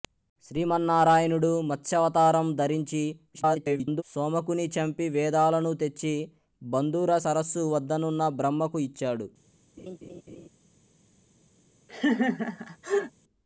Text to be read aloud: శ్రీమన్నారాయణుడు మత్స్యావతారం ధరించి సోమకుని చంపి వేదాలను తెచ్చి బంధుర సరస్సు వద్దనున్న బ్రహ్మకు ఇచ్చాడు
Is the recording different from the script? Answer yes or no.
yes